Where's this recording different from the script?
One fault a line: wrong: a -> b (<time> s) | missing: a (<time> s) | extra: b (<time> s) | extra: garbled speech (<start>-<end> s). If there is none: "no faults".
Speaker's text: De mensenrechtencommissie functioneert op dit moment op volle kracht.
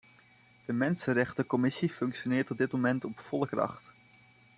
no faults